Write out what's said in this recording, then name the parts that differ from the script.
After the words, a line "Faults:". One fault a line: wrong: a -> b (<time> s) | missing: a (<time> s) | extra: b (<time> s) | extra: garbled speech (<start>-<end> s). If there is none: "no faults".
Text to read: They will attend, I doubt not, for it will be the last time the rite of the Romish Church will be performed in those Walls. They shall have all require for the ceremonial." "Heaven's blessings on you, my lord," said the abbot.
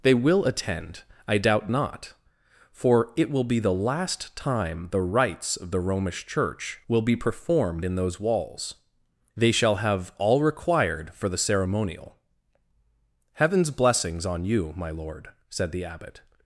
They will attend, I doubt not, for it will be the last time the rites of the Romish Church will be performed in those Walls. They shall have all required for the ceremonial." "Heaven's blessings on you, my lord," said the abbot.
Faults:
wrong: rite -> rites (5.0 s)
wrong: require -> required (10.4 s)